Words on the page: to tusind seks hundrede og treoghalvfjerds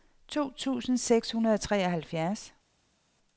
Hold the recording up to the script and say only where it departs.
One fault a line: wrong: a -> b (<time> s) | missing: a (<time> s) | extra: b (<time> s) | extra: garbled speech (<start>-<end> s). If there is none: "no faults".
no faults